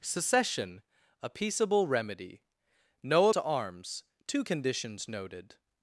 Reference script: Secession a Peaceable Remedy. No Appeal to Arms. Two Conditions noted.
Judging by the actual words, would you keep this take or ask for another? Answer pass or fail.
fail